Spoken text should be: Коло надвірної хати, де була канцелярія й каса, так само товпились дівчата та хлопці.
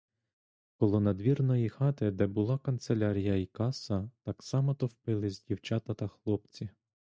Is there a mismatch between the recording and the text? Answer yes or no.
no